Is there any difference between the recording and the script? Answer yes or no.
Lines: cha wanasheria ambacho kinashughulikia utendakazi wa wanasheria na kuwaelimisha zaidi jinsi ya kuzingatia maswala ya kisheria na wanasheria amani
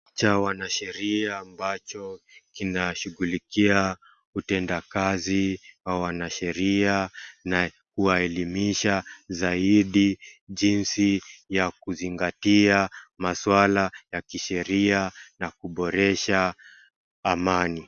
yes